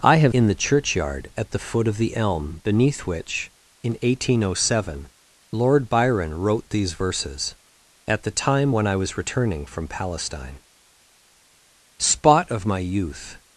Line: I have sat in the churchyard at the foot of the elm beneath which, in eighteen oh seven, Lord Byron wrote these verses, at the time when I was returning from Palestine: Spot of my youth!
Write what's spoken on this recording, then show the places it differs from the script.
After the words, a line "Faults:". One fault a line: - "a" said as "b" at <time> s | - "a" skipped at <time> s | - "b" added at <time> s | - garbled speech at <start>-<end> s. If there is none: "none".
I have in the churchyard at the foot of the elm beneath which, in eighteen oh seven, Lord Byron wrote these verses, at the time when I was returning from Palestine: Spot of my youth!
Faults:
- "sat" skipped at 0.3 s